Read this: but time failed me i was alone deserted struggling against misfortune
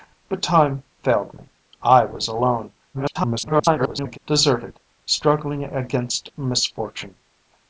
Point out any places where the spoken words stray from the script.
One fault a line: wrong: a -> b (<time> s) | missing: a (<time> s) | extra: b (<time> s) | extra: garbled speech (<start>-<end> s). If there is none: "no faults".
extra: garbled speech (2.9-4.2 s)